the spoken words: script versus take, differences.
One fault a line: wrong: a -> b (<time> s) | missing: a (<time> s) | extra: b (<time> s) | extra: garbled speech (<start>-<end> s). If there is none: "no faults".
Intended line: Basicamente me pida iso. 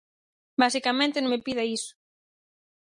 extra: non (1.2 s)